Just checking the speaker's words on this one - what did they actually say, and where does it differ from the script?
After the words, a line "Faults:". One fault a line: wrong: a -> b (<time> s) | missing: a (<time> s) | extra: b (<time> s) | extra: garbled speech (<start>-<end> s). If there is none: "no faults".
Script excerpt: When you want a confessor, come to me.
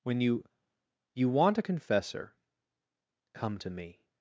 When you you want a confessor, come to me.
Faults:
extra: you (1.1 s)